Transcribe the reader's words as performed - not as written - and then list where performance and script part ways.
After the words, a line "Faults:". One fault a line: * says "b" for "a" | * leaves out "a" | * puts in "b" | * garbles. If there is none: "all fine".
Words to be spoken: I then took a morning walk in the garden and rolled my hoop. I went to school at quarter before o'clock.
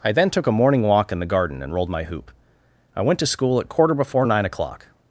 I then took a morning walk in the garden and rolled my hoop. I went to school at quarter before nine o'clock.
Faults:
* puts in "nine"